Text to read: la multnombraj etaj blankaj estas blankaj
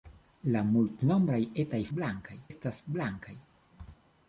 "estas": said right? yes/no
yes